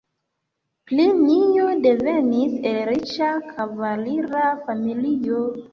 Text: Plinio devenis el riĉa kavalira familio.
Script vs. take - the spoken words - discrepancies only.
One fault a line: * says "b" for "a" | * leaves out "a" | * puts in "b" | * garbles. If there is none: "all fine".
all fine